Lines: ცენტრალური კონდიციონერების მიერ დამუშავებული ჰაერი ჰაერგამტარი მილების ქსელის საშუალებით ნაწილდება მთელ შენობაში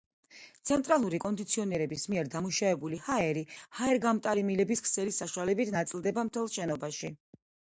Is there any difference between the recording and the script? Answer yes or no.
no